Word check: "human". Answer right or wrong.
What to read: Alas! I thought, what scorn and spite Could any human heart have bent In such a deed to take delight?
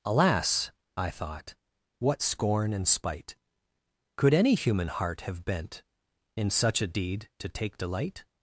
right